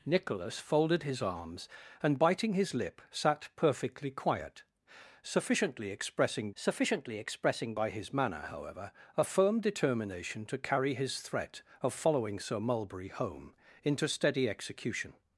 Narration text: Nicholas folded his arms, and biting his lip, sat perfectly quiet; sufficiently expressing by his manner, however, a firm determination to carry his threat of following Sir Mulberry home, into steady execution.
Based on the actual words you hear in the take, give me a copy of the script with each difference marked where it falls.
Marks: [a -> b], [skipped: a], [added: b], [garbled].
Nicholas folded his arms, and biting his lip, sat perfectly quiet; sufficiently expressing [added: sufficiently expressing] by his manner, however, a firm determination to carry his threat of following Sir Mulberry home, into steady execution.